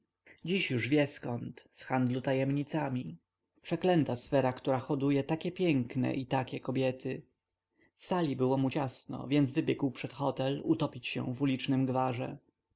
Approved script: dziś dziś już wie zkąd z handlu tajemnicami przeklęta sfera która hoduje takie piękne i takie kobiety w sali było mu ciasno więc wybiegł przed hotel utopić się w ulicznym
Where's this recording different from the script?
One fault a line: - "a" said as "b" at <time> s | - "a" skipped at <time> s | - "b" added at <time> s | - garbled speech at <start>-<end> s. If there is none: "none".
- "dziś" skipped at 0.7 s